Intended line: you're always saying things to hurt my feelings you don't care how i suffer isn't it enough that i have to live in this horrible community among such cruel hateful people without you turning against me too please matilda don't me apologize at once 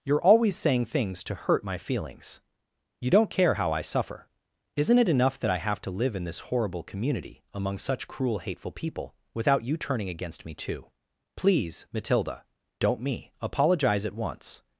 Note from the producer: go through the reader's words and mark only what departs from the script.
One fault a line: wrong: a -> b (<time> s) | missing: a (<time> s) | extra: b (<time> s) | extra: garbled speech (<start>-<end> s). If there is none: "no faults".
no faults